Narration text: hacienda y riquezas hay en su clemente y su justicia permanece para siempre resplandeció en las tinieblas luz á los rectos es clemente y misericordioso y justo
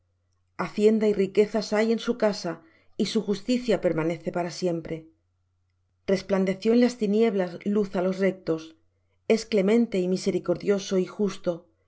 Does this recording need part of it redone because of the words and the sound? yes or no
yes